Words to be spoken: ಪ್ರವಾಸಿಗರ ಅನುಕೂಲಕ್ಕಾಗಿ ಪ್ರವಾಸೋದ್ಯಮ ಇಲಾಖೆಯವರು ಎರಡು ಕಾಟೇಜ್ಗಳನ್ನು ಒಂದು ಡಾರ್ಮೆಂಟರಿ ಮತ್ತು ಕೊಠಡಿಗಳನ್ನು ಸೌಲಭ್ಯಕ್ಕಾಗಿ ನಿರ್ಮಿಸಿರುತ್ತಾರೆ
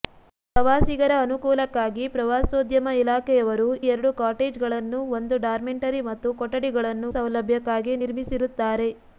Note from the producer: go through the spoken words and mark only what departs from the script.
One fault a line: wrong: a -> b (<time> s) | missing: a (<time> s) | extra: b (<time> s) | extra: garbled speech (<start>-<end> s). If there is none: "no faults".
no faults